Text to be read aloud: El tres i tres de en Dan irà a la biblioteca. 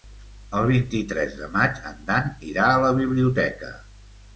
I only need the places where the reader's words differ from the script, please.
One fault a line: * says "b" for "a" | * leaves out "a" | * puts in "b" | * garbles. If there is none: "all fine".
* says "vint" for "tres"
* puts in "maig"